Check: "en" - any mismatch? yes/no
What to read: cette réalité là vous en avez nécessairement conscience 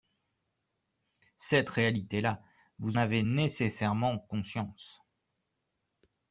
yes